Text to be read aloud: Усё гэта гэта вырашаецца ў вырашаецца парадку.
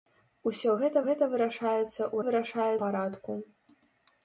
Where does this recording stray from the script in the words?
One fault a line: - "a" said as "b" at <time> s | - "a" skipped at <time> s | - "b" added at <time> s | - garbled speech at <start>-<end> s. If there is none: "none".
none